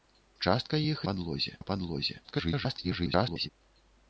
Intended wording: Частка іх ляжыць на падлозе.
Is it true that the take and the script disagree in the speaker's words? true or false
true